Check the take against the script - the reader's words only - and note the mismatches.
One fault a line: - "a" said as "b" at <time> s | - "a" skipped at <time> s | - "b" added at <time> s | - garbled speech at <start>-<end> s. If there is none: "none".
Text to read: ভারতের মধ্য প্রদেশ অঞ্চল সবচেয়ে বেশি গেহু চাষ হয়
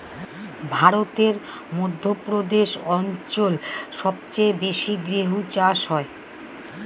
none